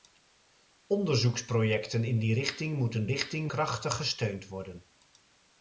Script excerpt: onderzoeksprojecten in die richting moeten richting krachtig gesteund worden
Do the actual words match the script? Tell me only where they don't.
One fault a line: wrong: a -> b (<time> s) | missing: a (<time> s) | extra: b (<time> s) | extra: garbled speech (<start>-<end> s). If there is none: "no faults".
no faults